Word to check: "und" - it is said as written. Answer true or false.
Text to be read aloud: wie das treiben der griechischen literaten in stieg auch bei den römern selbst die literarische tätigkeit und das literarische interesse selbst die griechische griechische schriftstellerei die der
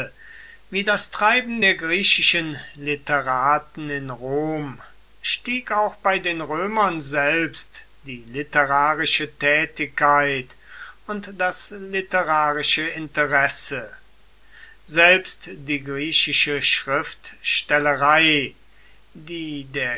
true